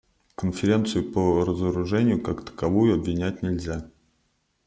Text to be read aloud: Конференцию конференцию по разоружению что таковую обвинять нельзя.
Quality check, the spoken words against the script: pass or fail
fail